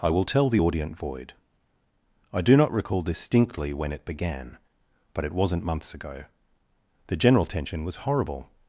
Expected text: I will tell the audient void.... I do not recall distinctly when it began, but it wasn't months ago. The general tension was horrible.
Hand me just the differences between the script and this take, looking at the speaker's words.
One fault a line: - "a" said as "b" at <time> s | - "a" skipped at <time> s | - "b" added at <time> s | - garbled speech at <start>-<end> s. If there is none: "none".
none